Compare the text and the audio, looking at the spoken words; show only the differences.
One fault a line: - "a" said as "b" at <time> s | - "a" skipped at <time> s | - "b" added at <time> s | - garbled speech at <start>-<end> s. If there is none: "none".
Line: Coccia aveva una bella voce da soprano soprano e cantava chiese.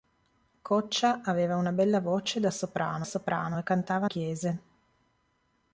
none